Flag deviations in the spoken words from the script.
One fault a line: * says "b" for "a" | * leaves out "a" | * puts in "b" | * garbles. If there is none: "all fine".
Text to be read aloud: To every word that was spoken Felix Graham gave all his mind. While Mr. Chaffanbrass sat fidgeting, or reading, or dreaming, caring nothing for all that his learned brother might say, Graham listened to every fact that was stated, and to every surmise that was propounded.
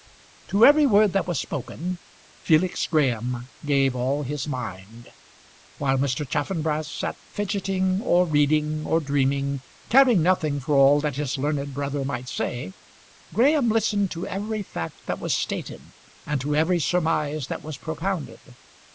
all fine